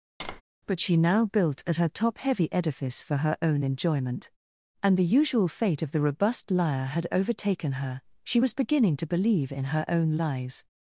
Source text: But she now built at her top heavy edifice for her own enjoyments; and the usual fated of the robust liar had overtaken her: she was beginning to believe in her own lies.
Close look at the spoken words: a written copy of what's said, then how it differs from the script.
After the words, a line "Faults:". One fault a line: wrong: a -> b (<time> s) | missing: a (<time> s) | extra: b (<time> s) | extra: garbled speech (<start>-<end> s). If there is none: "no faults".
But she now built at her top heavy edifice for her own enjoyment; and the usual fate of the robust liar had overtaken her: she was beginning to believe in her own lies.
Faults:
wrong: enjoyments -> enjoyment (3.6 s)
wrong: fated -> fate (5.5 s)